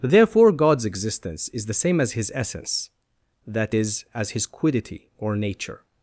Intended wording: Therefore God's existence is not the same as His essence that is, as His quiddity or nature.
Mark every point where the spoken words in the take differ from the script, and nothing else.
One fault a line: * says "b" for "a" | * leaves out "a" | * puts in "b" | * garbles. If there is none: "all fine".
* leaves out "not"